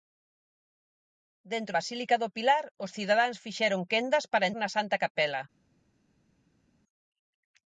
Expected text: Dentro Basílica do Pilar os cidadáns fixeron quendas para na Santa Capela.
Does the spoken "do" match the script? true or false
true